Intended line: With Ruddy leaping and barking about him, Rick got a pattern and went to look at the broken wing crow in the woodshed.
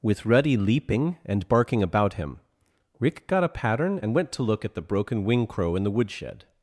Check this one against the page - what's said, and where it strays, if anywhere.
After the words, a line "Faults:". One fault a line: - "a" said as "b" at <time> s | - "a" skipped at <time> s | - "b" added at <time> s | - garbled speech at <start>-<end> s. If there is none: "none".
With Ruddy leaping and barking about him, Rick got a pattern and went to look at the broken wing crow in the woodshed.
Faults:
none